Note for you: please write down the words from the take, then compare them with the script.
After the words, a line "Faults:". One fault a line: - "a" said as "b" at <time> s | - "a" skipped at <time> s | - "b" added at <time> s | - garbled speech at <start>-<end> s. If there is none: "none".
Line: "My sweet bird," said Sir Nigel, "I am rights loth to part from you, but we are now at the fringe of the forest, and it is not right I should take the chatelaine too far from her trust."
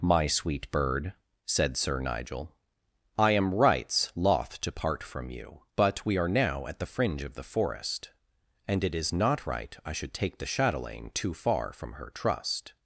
"My sweet bird," said Sir Nigel, "I am rights loth to part from you, but we are now at the fringe of the forest, and it is not right I should take the chatelaine too far from her trust."
Faults:
none